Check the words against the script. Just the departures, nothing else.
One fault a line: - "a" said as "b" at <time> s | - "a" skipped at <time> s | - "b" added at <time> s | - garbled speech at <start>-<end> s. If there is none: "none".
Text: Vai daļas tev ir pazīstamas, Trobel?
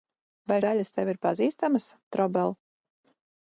none